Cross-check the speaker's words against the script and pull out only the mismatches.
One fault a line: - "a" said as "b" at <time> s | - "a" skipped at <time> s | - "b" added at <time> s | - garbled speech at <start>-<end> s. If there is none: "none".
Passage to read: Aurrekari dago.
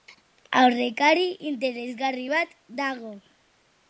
- "interesgarri bat" added at 1.5 s